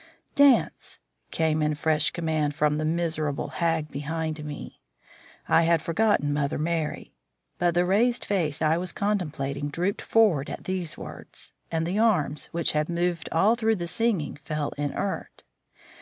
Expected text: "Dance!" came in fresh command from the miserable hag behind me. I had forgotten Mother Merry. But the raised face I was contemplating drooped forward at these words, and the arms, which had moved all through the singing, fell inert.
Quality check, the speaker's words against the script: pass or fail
pass